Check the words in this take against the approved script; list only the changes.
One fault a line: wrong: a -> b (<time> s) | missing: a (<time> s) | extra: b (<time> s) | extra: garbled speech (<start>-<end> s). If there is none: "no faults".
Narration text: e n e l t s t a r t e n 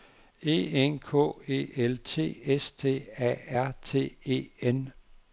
extra: k (1.0 s)